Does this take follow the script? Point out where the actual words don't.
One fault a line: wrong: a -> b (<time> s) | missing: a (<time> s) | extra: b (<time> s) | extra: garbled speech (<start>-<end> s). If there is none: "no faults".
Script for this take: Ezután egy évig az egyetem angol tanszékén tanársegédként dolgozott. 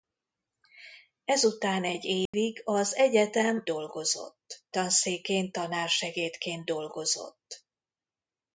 wrong: angol -> dolgozott (3.6 s)